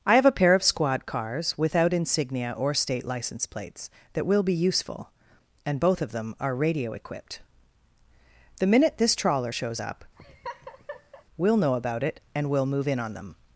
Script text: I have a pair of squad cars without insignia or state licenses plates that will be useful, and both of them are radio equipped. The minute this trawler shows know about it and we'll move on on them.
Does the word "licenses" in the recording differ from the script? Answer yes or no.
yes